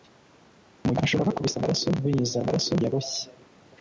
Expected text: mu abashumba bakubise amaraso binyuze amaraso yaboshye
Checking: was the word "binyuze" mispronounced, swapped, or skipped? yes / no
no